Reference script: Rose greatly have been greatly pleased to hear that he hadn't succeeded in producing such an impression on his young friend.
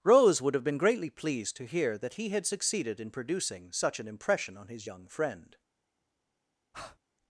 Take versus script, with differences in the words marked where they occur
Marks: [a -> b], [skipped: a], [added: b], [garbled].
Rose [greatly -> would] have been greatly pleased to hear that he [hadn't -> had] succeeded in producing such an impression on his young friend.